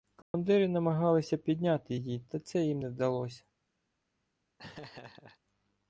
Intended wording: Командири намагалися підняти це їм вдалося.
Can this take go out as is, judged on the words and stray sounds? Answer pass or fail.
fail